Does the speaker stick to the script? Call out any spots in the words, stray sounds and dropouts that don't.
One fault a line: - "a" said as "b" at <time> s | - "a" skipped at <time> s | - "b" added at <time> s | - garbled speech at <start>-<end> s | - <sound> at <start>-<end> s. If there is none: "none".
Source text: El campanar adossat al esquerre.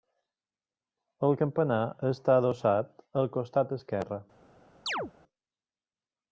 - "està" added at 2.1 s
- "costat" added at 3.4 s
- chirp at 4.9-5.1 s